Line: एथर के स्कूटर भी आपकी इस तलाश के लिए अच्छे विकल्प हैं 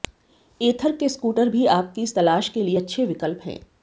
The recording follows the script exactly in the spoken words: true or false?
true